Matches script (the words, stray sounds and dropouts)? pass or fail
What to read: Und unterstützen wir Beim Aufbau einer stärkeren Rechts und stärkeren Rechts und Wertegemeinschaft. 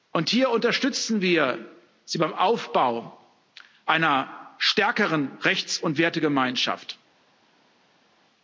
fail